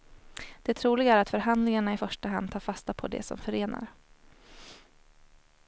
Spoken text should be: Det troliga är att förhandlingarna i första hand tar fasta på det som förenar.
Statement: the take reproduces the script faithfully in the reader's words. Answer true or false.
true